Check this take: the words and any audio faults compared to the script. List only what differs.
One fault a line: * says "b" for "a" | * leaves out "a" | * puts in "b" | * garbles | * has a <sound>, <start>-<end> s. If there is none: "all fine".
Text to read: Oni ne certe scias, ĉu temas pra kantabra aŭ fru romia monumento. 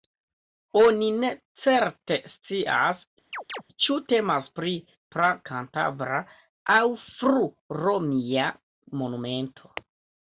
* has a chirp, 3.3-3.6 s
* puts in "pri"